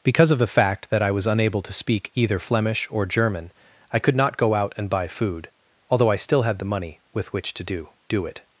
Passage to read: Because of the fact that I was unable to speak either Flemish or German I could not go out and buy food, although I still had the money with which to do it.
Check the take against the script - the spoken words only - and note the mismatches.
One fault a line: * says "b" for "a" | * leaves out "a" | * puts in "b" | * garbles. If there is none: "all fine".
* puts in "do"